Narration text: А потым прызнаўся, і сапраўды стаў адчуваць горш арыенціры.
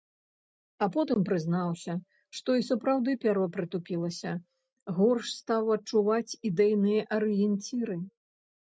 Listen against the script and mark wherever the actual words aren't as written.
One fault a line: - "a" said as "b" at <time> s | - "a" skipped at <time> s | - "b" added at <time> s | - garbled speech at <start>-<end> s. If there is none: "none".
- "што" added at 2.4 s
- "пяро прытупілася горш" added at 3.2 s
- "горш" said as "ідэйныя" at 6.5 s